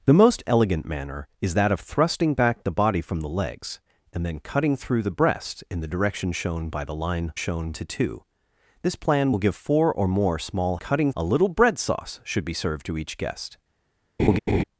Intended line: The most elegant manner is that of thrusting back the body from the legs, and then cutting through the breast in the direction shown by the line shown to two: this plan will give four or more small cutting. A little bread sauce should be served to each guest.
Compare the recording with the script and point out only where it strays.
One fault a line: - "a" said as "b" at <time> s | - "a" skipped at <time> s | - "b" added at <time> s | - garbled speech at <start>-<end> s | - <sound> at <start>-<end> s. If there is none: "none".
- laugh at 14.2-14.6 s